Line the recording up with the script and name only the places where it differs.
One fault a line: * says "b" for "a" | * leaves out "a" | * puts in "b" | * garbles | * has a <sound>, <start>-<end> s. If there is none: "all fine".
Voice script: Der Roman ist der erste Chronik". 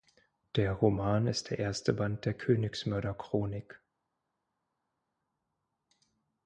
* puts in "Band der Königsmörder"